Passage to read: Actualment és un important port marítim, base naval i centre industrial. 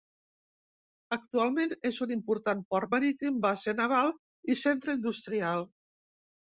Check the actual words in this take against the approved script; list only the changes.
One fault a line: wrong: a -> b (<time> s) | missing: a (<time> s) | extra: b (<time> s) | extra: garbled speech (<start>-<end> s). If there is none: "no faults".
no faults